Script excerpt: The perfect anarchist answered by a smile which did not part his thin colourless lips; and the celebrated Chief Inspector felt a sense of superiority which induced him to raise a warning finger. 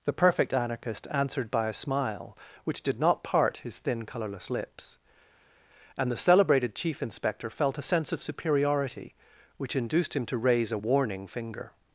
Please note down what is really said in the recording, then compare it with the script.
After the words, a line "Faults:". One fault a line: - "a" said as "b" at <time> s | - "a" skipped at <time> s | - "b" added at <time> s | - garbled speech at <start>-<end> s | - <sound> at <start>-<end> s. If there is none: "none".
The perfect anarchist answered by a smile which did not part his thin colourless lips; and the celebrated Chief Inspector felt a sense of superiority which induced him to raise a warning finger.
Faults:
none